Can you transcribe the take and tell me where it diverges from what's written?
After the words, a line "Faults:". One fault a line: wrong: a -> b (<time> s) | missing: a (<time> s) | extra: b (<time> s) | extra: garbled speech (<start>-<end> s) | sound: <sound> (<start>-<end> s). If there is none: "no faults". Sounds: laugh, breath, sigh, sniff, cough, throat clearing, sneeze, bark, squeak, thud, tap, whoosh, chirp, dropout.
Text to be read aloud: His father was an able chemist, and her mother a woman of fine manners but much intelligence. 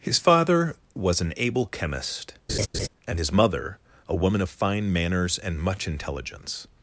His father was an able chemist, and his mother a woman of fine manners and much intelligence.
Faults:
sound: laugh (2.5-2.9 s)
wrong: her -> his (3.2 s)
wrong: but -> and (5.4 s)